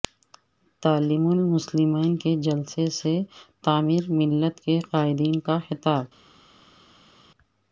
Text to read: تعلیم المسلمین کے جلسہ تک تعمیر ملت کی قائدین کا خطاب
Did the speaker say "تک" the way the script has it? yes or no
no